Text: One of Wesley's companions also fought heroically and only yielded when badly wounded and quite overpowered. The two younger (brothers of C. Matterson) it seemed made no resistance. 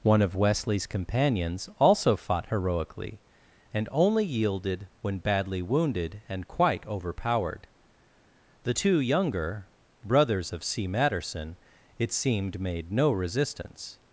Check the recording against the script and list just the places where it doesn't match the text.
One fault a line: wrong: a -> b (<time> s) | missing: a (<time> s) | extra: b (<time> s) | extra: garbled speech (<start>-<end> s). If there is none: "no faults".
no faults